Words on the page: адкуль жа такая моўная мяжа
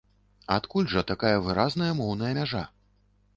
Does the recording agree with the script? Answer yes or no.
no